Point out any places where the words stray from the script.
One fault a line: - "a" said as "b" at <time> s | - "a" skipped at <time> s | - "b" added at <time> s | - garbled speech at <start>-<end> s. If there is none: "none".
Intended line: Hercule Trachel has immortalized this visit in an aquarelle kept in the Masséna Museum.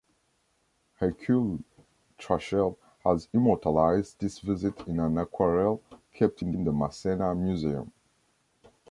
- "in" added at 6.5 s